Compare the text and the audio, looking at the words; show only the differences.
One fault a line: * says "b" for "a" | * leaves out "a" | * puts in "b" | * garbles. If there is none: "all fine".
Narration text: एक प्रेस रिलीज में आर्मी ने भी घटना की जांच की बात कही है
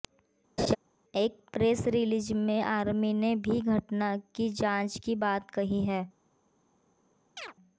all fine